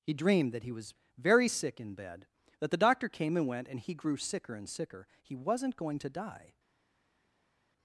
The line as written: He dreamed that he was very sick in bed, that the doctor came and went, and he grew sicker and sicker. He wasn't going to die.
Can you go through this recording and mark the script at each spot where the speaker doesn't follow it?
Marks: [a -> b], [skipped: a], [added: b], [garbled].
He dreamed that he was very sick in bed, that the doctor came and went, and he grew sicker and sicker. He wasn't going to die.